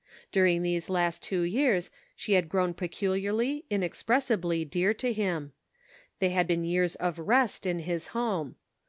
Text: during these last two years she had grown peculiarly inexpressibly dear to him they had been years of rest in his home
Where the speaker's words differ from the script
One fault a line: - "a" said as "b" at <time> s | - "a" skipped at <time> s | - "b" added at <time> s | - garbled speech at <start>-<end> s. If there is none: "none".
none